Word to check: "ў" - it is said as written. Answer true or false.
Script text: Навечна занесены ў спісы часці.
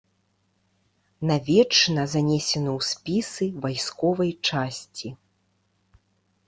true